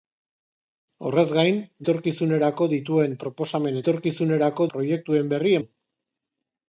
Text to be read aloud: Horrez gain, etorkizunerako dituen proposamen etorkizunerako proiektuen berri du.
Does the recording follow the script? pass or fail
pass